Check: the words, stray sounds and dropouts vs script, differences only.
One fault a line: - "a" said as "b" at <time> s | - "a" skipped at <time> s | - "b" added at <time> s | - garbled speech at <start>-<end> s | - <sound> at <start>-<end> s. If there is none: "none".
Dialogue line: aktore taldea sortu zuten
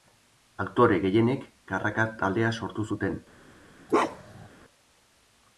- "gehienek karraka" added at 1.0 s
- bark at 3.9-4.5 s